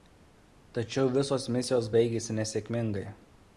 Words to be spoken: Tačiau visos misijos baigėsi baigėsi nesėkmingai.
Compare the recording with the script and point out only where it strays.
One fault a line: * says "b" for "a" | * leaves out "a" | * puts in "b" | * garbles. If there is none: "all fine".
* leaves out "baigėsi"